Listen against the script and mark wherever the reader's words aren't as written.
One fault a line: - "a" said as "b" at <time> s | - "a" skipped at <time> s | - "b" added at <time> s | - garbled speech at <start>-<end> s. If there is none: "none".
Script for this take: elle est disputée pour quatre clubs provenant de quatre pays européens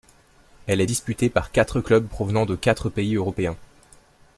- "pour" said as "par" at 1.3 s